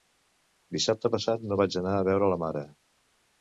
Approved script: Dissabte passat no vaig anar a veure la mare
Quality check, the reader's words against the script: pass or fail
pass